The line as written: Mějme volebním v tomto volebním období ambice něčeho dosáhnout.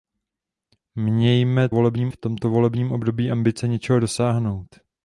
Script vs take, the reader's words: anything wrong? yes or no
no